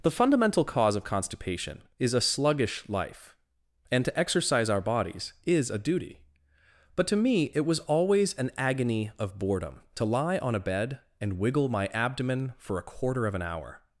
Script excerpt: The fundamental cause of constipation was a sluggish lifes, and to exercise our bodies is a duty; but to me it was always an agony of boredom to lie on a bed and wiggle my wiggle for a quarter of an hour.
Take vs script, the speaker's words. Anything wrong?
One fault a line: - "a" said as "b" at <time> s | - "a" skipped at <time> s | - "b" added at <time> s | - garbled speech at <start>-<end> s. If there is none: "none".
- "was" said as "is" at 2.0 s
- "lifes" said as "life" at 2.9 s
- "wiggle" said as "abdomen" at 11.9 s